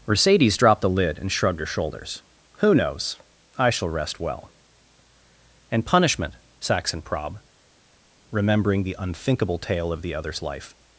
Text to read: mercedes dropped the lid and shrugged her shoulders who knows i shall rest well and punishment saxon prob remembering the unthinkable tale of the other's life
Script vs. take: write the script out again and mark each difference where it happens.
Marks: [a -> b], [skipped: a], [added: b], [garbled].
mercedes dropped the lid and shrugged her shoulders who knows i shall rest well and punishment saxon prob remembering the unthinkable tale of the other's life